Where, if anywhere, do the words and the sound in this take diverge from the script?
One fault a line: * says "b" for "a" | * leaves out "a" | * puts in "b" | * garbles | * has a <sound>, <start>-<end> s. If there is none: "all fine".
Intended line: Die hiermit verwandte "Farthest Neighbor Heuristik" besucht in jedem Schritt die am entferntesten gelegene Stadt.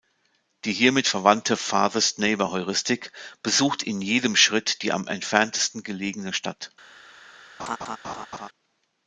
* has a laugh, 7.6-8.5 s